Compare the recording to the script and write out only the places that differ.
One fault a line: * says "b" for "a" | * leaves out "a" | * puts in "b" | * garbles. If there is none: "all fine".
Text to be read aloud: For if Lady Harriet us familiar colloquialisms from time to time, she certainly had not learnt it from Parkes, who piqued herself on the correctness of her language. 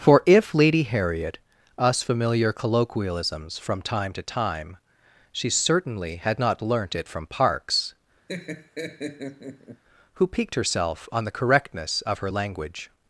all fine